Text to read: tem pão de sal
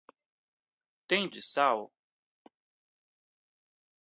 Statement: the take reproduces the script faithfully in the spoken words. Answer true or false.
false